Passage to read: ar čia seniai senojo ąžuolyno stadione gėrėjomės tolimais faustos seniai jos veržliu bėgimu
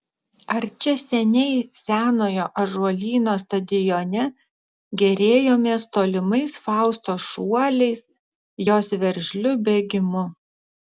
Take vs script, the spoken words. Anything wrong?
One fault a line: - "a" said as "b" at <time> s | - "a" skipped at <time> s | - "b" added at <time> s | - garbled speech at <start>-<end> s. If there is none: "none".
- "seniai" said as "šuoliais" at 7.3 s